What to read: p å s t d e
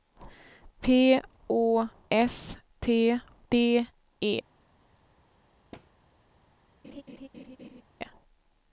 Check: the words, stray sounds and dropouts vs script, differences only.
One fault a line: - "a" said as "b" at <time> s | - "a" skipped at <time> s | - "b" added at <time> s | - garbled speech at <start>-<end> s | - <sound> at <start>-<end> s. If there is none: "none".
- thud at 5.7-5.9 s
- laugh at 6.8-7.8 s